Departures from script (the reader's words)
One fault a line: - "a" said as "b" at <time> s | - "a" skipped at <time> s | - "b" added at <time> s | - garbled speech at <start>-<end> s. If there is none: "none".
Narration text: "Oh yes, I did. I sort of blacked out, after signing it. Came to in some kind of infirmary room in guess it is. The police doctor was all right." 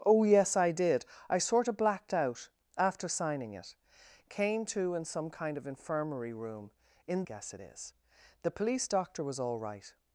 none